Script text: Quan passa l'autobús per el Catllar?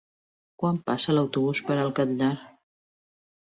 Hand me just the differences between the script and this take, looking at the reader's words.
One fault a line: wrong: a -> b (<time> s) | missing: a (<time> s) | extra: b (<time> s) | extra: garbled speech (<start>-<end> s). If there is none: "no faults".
no faults